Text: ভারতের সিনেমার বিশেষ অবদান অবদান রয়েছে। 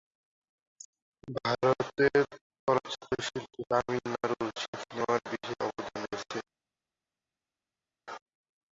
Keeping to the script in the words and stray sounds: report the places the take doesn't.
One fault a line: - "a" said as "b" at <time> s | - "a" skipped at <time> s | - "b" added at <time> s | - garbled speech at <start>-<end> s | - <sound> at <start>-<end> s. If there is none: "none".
- "চলচ্চিত্র শিল্পে তামিলনাড়ুর" added at 2.7 s
- "অবদান" skipped at 6.0 s